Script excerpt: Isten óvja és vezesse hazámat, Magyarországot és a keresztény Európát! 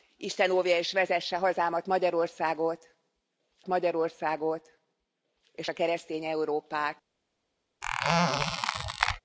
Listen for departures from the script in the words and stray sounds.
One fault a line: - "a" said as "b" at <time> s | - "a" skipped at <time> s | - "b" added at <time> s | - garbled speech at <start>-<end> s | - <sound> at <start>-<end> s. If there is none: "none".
- "Magyarországot" added at 3.7 s
- squeak at 7.8-9.2 s